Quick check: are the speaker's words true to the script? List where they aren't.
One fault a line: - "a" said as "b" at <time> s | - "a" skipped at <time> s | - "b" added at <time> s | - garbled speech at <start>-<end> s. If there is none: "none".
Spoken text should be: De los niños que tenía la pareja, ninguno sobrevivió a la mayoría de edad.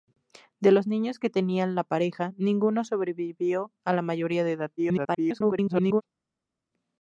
- garbled speech at 4.8-6.0 s